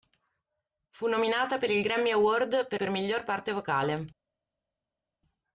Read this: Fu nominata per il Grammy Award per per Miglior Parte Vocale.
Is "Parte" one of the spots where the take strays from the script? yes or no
no